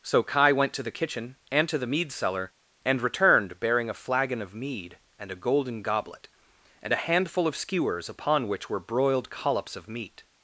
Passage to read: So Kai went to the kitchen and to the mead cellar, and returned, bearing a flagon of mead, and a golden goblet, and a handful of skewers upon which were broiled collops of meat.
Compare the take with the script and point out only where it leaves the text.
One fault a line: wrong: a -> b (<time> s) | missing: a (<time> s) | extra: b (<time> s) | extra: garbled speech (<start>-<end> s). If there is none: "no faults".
no faults